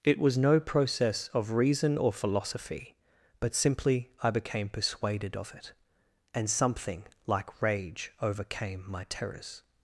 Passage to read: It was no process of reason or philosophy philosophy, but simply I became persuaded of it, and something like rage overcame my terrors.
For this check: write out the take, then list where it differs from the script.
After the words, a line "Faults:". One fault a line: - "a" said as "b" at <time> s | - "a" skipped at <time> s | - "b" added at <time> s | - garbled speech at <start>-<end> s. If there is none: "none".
It was no process of reason or philosophy, but simply I became persuaded of it, and something like rage overcame my terrors.
Faults:
- "philosophy" skipped at 3.0 s